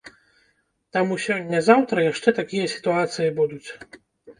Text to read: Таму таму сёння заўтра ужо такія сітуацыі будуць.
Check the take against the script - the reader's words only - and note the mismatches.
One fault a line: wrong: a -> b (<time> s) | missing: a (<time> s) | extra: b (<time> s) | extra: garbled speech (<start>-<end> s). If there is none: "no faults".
missing: таму (1.2 s)
wrong: ужо -> яшчэ (2.1 s)